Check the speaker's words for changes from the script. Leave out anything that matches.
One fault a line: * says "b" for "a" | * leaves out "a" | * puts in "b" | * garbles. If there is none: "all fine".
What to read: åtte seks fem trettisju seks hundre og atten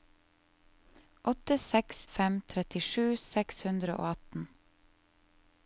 all fine